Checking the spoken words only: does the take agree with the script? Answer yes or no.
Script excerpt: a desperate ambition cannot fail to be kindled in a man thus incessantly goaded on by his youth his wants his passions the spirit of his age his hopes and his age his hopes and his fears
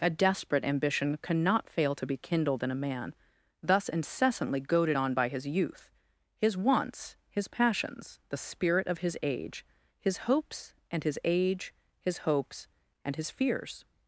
yes